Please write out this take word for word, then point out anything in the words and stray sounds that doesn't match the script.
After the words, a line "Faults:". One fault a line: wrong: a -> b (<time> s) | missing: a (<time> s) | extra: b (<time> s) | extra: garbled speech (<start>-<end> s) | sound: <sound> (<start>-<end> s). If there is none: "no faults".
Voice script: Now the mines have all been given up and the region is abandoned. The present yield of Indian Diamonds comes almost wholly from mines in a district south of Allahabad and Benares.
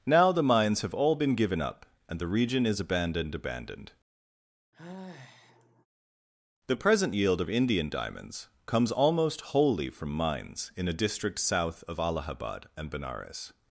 Now the mines have all been given up and the region is abandoned abandoned. The present yield of Indian Diamonds comes almost wholly from mines in a district south of Allahabad and Benares.
Faults:
extra: abandoned (3.4 s)
sound: sigh (4.7-5.9 s)